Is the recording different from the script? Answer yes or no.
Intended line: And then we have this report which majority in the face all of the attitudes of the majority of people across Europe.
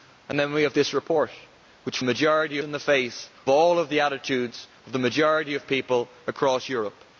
no